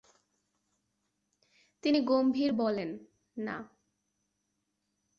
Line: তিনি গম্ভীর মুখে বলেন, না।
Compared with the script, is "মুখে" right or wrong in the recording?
wrong